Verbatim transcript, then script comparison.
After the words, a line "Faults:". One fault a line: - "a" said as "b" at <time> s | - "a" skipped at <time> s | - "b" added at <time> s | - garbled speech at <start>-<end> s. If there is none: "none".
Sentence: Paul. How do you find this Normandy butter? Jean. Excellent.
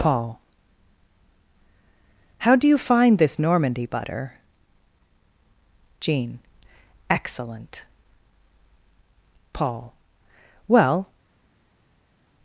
Paul. How do you find this Normandy butter? Jean. Excellent. Paul. Well
Faults:
- "Paul Well" added at 9.5 s